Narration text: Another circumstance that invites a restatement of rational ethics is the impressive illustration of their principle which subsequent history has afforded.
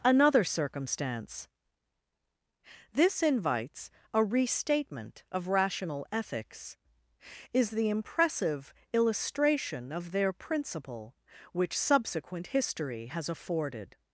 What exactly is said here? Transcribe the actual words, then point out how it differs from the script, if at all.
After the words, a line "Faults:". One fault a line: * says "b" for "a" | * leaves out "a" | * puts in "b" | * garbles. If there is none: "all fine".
Another circumstance this invites a restatement of rational ethics is the impressive illustration of their principle which subsequent history has afforded.
Faults:
* says "this" for "that"